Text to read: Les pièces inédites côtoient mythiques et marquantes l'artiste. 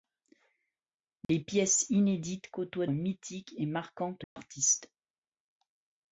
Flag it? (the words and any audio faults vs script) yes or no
yes